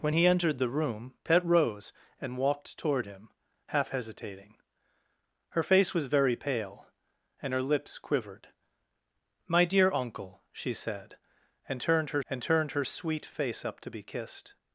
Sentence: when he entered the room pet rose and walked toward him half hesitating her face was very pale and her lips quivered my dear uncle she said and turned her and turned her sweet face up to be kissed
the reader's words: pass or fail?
pass